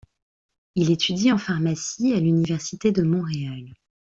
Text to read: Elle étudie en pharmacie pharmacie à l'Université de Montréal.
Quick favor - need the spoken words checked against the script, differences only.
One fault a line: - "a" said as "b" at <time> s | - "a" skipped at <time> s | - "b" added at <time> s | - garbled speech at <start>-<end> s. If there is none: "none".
- "Elle" said as "Il" at 0.7 s
- "pharmacie" skipped at 2.1 s